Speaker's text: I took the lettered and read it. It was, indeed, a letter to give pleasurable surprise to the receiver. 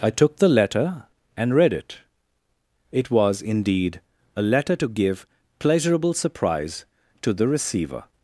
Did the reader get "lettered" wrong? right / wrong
wrong